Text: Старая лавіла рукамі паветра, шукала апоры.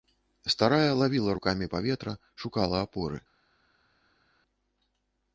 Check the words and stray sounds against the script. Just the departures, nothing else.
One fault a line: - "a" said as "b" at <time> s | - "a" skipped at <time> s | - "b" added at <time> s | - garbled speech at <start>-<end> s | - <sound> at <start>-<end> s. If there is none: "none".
none